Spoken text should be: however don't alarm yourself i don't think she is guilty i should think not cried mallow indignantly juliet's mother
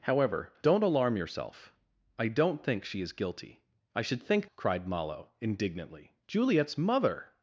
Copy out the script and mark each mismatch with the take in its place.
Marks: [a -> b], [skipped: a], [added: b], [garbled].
however don't alarm yourself i don't think she is guilty i should think [skipped: not] cried mallow indignantly juliet's mother